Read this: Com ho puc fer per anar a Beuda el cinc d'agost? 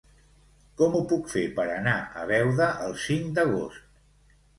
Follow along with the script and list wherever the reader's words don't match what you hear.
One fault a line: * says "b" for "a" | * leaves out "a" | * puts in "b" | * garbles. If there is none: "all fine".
all fine